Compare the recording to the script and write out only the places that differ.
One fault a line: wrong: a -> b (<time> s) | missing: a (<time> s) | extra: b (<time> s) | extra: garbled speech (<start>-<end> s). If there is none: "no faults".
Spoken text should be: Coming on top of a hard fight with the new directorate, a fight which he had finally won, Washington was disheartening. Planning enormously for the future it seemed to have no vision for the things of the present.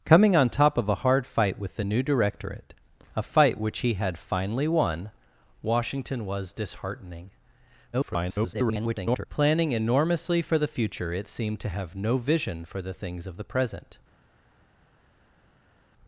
extra: garbled speech (7.9-9.3 s)